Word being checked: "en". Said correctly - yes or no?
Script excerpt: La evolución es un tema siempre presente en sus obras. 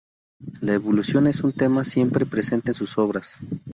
yes